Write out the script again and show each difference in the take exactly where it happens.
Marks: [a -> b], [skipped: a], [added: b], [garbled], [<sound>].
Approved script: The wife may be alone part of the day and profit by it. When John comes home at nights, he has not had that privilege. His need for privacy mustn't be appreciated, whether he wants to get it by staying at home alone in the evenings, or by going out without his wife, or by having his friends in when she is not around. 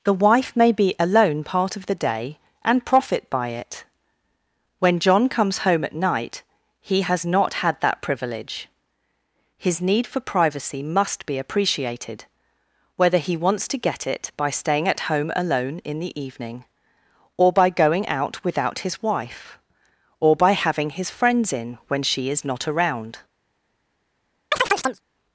The wife may be alone part of the day and profit by it. When John comes home at [nights, -> night] he has not had that privilege. His need for privacy [mustn't -> must] be appreciated, whether he wants to get it by staying at home alone in the [evenings, -> evening] or by going out without his wife, or by having his friends in when she is not around. [chirp]